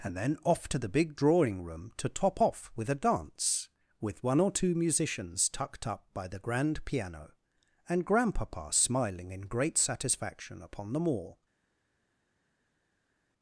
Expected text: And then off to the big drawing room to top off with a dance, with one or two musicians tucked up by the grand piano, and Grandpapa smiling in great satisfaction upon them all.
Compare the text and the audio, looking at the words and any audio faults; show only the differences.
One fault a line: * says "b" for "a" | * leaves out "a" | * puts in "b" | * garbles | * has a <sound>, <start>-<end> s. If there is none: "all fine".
all fine